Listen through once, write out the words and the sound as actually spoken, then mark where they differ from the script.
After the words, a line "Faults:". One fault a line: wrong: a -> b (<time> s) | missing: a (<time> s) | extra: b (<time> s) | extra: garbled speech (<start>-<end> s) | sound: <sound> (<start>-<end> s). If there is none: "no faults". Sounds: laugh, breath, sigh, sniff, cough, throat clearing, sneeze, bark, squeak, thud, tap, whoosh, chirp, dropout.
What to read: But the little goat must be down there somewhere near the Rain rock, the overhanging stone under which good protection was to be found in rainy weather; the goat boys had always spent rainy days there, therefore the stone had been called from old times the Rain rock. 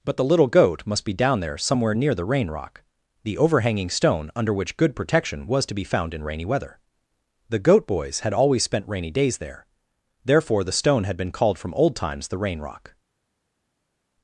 But the little goat must be down there somewhere near the Rain rock, the overhanging stone under which good protection was to be found in rainy weather; the goat boys had always spent rainy days there, therefore the stone had been called from old times the Rain rock.
Faults:
no faults